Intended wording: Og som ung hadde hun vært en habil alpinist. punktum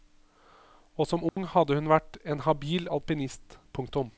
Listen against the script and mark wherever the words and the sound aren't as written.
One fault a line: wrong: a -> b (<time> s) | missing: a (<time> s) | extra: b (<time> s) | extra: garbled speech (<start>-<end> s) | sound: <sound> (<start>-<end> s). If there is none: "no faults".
sound: dropout (1.3-1.4 s)